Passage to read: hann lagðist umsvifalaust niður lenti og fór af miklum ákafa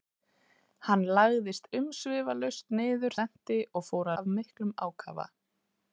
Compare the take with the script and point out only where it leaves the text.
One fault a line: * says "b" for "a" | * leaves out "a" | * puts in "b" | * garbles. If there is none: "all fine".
all fine